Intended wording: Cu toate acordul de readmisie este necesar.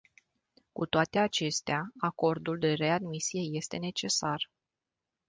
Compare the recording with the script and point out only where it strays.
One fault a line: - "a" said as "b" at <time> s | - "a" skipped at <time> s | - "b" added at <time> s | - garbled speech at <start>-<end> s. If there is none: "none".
- "acestea" added at 1.2 s